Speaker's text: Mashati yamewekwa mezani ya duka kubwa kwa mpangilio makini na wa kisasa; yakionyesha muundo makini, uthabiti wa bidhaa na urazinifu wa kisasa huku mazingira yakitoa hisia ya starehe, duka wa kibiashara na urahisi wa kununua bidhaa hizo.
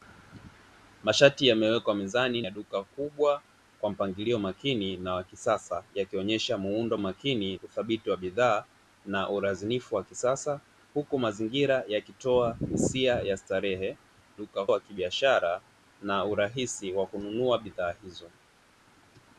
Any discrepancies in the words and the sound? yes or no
no